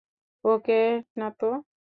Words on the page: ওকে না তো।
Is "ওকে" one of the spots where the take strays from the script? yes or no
no